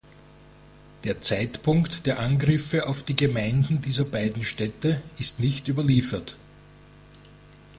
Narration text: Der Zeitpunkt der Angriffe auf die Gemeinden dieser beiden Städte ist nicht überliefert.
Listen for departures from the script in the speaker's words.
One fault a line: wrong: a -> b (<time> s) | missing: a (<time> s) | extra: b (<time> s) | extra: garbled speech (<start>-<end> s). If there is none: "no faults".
no faults